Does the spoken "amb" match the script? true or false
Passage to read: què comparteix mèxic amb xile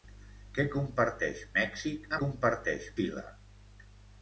false